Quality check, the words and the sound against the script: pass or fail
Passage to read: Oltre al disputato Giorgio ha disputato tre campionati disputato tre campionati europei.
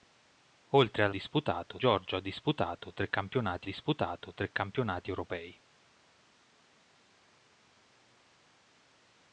pass